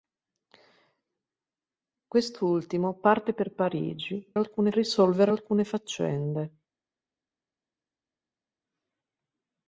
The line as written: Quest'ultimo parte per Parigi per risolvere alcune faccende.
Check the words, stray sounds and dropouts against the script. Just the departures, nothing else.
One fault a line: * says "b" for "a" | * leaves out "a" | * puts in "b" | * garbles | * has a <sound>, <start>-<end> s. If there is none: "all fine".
* says "alcune" for "per"